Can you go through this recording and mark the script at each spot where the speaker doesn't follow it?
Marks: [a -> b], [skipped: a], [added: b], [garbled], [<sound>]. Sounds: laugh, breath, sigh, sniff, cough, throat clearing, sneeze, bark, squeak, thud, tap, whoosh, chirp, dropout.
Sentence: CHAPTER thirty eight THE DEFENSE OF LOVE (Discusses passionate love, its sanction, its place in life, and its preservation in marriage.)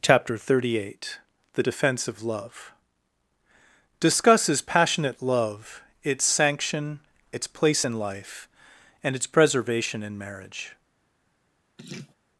CHAPTER thirty eight THE DEFENSE OF LOVE (Discusses passionate love, its sanction, its place in life, and its preservation in marriage.) [laugh]